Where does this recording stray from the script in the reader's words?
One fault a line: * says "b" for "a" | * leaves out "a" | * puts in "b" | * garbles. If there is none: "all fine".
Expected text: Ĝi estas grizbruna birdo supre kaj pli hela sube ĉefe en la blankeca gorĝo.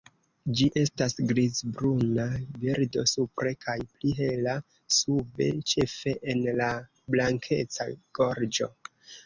all fine